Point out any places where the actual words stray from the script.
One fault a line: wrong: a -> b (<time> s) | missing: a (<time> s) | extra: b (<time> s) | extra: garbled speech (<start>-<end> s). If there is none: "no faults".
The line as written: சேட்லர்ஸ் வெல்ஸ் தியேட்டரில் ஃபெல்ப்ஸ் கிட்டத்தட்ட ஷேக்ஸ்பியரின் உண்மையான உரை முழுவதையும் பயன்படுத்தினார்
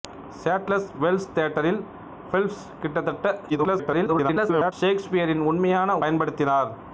extra: garbled speech (3.5-4.7 s)
missing: உரை முழுவதையும் (6.0 s)